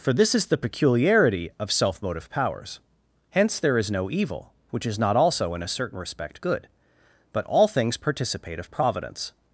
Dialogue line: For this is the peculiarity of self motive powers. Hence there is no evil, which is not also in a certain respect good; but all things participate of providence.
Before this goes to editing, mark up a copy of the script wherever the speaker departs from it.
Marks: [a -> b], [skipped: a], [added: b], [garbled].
For this is the peculiarity of self motive powers. Hence there is no evil, which is not also in a certain respect good; but all things participate of providence.